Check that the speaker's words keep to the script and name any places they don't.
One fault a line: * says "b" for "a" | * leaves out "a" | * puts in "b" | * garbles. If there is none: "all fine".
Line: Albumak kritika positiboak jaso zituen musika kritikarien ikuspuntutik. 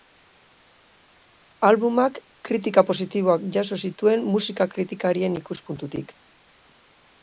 all fine